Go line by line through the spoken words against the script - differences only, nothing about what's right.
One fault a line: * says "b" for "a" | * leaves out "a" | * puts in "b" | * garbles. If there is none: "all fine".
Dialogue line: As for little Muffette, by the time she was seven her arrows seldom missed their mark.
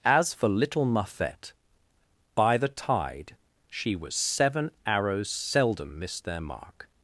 * says "tide" for "time"
* leaves out "her"